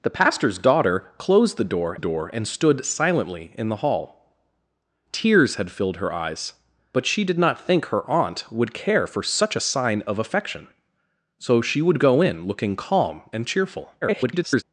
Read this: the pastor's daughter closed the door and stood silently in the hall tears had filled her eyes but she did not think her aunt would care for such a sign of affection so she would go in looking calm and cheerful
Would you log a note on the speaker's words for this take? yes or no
yes